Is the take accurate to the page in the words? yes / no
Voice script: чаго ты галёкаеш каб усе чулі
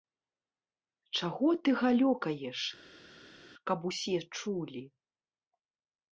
yes